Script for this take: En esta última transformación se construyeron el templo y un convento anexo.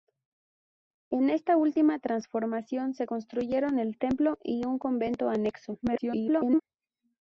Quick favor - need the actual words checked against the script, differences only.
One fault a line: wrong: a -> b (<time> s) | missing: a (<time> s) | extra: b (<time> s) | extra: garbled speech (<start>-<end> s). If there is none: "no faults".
extra: garbled speech (5.8-6.6 s)